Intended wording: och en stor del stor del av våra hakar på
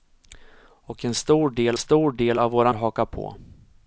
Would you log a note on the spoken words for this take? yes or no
no